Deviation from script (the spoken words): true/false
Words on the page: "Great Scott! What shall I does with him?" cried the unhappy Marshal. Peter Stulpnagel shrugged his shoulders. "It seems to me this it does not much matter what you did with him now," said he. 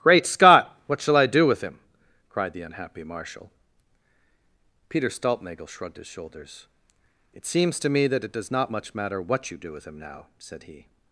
true